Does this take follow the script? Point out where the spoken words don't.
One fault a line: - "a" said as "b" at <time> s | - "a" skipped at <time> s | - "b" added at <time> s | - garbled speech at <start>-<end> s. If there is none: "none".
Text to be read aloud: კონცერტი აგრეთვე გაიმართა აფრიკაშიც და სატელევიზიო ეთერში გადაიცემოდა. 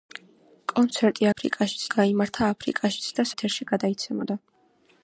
- "აგრეთვე" said as "აფრიკაშიც" at 1.3 s
- "სატელევიზიო" skipped at 3.3 s